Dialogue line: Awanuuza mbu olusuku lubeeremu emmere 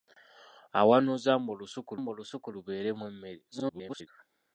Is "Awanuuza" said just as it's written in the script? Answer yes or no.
yes